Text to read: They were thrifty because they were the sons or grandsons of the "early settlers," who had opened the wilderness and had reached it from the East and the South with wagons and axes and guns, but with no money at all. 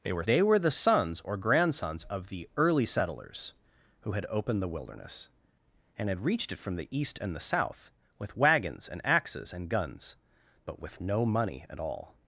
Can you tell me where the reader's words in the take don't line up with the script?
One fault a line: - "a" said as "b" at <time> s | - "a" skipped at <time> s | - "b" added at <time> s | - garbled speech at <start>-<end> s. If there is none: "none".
- "thrifty because" skipped at 0.2 s